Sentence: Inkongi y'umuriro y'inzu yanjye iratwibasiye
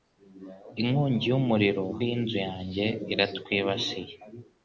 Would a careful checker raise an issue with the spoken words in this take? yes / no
no